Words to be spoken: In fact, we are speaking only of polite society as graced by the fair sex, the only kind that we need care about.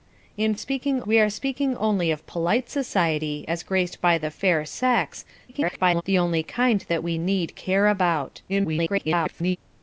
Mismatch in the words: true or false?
true